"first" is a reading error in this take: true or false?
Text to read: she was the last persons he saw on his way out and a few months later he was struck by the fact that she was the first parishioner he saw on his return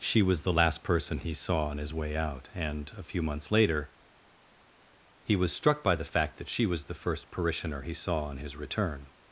false